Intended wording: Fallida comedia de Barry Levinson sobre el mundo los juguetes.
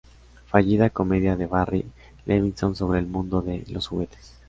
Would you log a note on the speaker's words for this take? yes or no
yes